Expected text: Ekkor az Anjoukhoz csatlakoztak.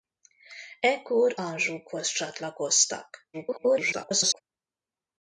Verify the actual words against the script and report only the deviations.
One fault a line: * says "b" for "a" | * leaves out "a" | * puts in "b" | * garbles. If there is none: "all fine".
* leaves out "az"
* garbles